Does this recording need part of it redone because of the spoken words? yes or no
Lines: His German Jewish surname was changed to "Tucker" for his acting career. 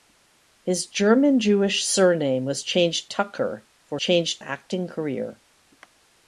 yes